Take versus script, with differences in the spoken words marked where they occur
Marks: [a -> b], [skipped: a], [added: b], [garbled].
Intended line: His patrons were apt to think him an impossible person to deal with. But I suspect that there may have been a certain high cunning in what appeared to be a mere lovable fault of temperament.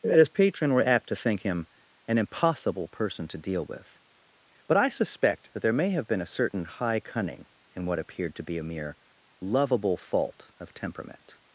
His [patrons -> patron] were apt to think him an impossible person to deal with. But I suspect that there may have been a certain high cunning in what appeared to be a mere lovable fault of temperament.